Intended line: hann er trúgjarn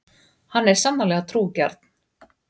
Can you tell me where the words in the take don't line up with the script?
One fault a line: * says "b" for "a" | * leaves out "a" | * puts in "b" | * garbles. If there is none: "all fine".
* puts in "sannarlega"